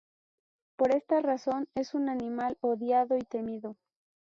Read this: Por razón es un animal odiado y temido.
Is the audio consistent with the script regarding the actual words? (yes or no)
no